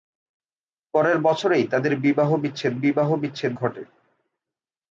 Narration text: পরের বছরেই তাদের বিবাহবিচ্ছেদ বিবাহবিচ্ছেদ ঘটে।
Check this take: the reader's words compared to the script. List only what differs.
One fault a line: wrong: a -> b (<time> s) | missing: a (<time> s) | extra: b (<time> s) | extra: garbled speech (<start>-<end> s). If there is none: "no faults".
no faults